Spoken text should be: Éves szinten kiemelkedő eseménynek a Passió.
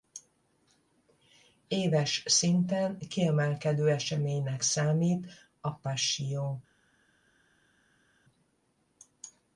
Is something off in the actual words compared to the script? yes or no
yes